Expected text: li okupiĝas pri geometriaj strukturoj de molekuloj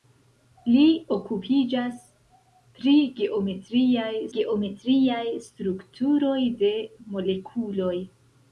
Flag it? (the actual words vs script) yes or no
yes